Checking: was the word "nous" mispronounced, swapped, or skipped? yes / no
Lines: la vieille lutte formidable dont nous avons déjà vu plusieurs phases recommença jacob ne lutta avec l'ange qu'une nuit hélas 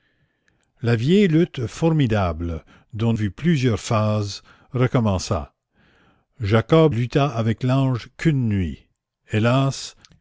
yes